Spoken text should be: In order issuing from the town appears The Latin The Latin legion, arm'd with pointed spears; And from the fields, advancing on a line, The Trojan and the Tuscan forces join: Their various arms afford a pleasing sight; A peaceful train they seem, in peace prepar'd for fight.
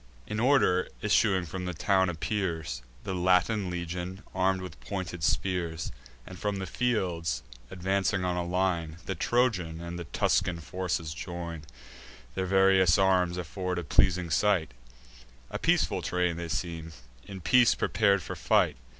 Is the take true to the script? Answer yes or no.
no